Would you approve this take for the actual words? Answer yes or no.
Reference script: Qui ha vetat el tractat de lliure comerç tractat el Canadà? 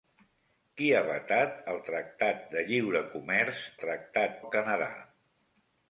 yes